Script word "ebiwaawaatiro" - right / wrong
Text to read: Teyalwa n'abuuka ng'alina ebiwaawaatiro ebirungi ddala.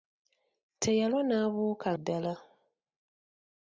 wrong